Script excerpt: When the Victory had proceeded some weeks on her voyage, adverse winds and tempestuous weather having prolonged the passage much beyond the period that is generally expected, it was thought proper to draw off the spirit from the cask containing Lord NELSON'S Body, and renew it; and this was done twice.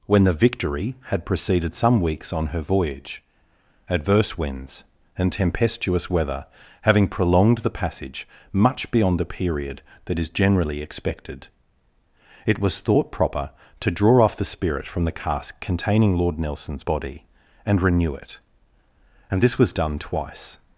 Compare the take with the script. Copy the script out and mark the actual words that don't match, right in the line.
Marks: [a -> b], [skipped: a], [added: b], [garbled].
When the Victory had proceeded some weeks on her voyage, adverse winds and tempestuous weather having prolonged the passage much beyond the period that is generally expected, it was thought proper to draw off the spirit from the cask containing Lord NELSON'S Body, and renew it; and this was done twice.